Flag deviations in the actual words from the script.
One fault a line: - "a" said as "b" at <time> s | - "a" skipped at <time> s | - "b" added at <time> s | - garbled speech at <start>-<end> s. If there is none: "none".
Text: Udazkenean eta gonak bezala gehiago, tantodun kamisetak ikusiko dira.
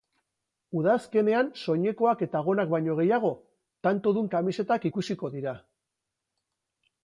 - "soinekoak" added at 1.6 s
- "bezala" said as "baino" at 2.7 s